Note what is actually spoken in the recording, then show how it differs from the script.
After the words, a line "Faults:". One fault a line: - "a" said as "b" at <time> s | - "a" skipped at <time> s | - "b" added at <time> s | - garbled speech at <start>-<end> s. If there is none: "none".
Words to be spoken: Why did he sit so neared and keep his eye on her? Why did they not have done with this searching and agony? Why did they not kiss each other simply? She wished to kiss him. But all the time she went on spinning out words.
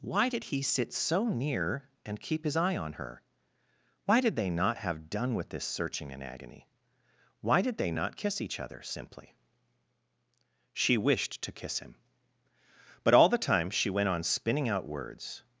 Why did he sit so near and keep his eye on her? Why did they not have done with this searching and agony? Why did they not kiss each other simply? She wished to kiss him. But all the time she went on spinning out words.
Faults:
- "neared" said as "near" at 1.3 s